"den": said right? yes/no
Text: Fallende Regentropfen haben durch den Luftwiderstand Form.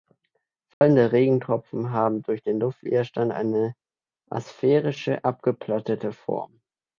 yes